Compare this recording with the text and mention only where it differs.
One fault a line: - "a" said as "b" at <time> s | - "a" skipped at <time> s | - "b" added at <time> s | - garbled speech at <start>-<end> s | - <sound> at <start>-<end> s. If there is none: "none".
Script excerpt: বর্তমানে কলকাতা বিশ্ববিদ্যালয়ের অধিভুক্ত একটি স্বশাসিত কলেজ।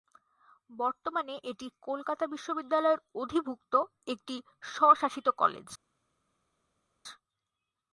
- "এটি" added at 1.4 s